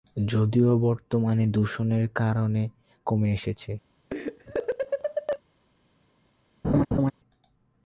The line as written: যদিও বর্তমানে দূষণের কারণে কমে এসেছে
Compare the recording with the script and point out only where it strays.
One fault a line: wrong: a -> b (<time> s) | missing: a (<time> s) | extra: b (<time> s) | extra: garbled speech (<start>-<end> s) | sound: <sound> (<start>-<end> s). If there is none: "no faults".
sound: laugh (4.1-5.4 s)
sound: laugh (6.6-7.1 s)